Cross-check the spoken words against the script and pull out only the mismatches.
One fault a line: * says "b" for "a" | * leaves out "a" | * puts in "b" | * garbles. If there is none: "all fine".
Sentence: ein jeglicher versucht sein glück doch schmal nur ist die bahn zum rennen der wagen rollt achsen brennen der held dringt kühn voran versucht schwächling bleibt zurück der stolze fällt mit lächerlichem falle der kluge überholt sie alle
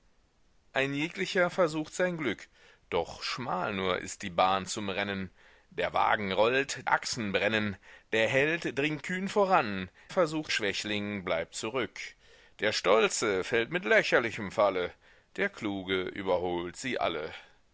all fine